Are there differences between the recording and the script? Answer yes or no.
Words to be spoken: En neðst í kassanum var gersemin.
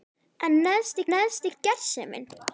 yes